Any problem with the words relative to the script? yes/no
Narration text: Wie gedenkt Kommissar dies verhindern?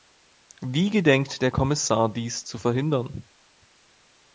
yes